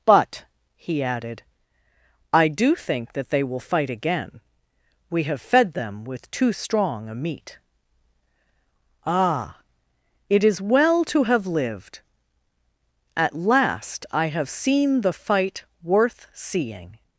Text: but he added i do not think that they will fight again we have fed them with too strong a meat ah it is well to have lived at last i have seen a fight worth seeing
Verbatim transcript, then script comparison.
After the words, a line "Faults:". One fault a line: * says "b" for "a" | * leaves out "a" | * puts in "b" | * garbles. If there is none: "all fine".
but he added i do think that they will fight again we have fed them with too strong a meat ah it is well to have lived at last i have seen the fight worth seeing
Faults:
* leaves out "not"
* says "the" for "a"